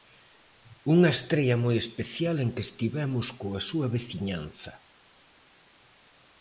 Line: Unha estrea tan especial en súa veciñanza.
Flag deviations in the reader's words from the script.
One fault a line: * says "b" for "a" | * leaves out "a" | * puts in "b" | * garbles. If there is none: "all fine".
* says "moi" for "tan"
* puts in "que estivemos coa"